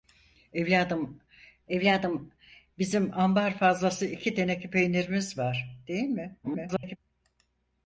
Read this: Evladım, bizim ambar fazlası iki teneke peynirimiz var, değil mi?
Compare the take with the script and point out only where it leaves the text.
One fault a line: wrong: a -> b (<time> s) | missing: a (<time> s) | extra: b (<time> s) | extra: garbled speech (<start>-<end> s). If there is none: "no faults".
extra: evladım (1.7 s)
extra: garbled speech (6.4-7.0 s)